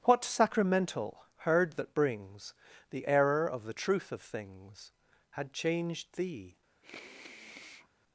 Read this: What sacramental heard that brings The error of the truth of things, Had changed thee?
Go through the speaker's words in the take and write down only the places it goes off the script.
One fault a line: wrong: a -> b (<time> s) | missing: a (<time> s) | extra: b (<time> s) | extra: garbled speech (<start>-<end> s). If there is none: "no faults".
no faults